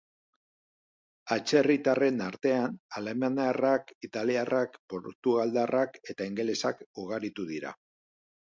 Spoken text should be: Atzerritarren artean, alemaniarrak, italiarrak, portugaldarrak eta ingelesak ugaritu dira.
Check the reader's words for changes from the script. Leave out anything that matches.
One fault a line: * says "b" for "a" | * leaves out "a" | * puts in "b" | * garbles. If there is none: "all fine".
all fine